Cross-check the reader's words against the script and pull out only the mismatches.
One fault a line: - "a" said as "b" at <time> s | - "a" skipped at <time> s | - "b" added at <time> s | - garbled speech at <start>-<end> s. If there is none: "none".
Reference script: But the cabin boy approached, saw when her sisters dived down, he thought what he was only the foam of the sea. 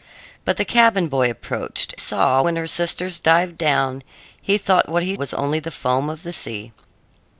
none